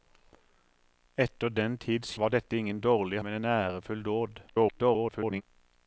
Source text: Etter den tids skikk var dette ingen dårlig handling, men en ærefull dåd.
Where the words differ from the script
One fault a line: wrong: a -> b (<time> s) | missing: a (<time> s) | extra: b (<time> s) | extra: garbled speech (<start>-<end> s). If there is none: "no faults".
missing: skikk (2.1 s)
missing: handling (3.2 s)
extra: garbled speech (4.5-5.4 s)